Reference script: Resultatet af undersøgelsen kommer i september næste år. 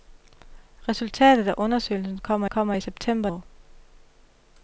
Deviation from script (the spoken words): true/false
true